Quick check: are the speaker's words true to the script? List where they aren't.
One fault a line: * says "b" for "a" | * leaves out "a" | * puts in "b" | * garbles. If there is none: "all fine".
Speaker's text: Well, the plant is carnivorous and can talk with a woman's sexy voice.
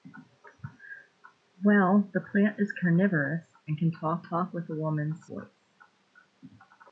* puts in "talk"
* leaves out "sexy"